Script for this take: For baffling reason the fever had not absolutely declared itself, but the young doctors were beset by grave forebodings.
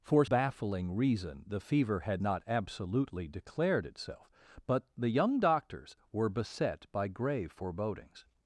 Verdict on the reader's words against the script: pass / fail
pass